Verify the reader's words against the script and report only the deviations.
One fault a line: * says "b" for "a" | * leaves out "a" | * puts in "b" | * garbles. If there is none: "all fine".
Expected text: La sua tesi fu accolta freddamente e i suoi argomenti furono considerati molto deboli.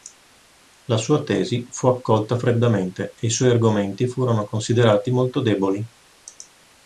all fine